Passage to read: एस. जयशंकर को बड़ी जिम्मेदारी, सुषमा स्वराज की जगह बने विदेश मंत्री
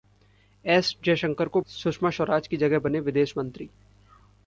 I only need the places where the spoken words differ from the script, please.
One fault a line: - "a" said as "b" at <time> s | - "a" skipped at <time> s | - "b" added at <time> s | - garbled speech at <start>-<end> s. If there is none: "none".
- "बड़ी जिम्मेदारी" skipped at 1.6 s